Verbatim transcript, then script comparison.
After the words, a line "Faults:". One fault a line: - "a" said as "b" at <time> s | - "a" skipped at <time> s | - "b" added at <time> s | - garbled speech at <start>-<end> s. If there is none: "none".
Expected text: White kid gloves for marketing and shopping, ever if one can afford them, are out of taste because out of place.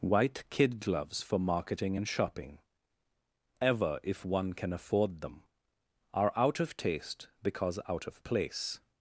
White kid gloves for marketing and shopping, ever if one can afford them, are out of taste because out of place.
Faults:
none